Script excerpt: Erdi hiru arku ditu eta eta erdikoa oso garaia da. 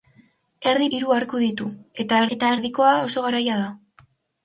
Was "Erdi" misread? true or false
false